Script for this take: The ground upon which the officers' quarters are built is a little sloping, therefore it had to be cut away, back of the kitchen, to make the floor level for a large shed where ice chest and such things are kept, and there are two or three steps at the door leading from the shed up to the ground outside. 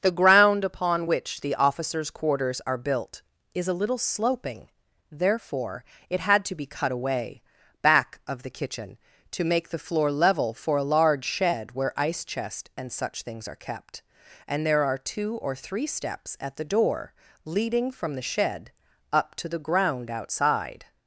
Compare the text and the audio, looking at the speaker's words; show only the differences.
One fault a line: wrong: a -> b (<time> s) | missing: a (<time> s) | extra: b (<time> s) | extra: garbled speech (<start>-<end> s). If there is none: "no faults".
no faults